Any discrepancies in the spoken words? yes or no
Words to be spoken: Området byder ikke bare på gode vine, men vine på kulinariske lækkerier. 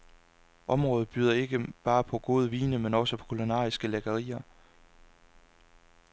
yes